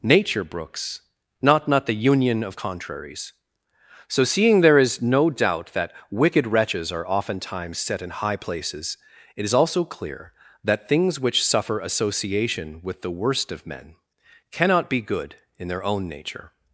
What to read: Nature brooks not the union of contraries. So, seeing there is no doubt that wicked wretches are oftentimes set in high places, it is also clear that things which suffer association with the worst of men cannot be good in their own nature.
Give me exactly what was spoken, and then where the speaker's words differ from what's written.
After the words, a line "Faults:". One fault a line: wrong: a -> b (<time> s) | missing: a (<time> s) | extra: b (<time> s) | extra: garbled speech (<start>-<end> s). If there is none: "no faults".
Nature brooks not not the union of contraries. So, seeing there is no doubt that wicked wretches are oftentimes set in high places, it is also clear that things which suffer association with the worst of men cannot be good in their own nature.
Faults:
extra: not (1.7 s)